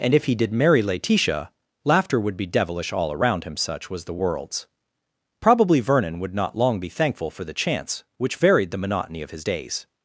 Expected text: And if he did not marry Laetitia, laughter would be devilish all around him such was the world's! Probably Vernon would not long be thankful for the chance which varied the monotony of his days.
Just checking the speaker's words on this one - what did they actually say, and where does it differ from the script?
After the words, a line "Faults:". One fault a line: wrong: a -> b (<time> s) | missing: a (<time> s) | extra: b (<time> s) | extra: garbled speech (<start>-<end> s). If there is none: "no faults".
And if he did marry Laetitia, laughter would be devilish all around him such was the world's! Probably Vernon would not long be thankful for the chance which varied the monotony of his days.
Faults:
missing: not (0.5 s)